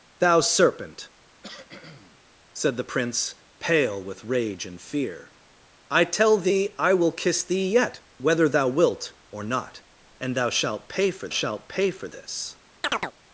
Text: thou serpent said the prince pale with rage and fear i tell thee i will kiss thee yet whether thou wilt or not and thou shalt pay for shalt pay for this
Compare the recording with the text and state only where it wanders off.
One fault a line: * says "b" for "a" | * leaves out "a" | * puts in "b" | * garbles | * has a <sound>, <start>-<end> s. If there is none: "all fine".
* has a cough, 1.4-2.2 s
* has a chirp, 12.8-13.1 s